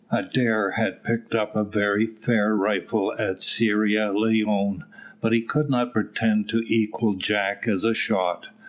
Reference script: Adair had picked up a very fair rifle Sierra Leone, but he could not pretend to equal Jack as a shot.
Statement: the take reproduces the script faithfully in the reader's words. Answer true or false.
false